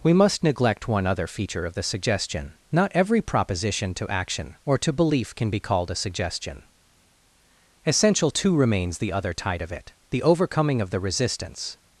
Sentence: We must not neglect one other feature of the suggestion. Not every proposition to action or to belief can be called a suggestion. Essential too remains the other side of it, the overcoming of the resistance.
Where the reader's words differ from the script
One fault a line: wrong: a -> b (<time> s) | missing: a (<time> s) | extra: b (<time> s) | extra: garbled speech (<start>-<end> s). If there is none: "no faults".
missing: not (0.4 s)
wrong: side -> tide (9.3 s)